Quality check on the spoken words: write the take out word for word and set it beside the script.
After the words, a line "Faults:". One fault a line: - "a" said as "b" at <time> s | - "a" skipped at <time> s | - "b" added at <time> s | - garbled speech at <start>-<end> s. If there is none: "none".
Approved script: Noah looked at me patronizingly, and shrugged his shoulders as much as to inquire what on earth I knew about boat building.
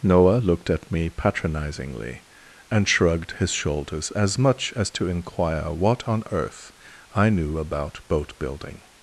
Noah looked at me patronizingly, and shrugged his shoulders as much as to inquire what on earth I knew about boat building.
Faults:
none